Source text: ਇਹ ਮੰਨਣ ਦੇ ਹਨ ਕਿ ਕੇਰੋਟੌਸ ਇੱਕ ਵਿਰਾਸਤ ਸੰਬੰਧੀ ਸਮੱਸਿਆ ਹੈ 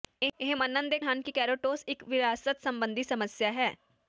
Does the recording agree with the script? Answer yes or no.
yes